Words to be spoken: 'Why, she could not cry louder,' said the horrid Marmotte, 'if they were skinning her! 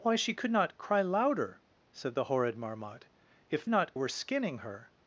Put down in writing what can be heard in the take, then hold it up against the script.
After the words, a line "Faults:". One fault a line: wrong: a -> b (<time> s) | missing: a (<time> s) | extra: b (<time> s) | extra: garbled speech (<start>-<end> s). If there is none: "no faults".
'Why, she could not cry louder,' said the horrid Marmotte, 'if not were skinning her!
Faults:
wrong: they -> not (3.7 s)